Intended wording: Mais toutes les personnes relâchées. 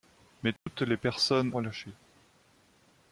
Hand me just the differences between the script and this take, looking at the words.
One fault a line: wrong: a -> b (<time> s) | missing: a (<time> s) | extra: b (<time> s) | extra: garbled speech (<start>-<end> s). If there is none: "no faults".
no faults